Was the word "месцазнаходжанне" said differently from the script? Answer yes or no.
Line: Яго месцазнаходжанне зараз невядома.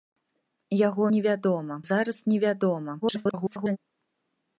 yes